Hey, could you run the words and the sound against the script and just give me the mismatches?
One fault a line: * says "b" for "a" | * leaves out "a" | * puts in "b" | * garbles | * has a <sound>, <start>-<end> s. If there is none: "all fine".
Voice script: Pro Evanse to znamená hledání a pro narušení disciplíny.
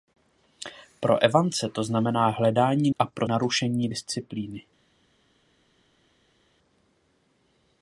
all fine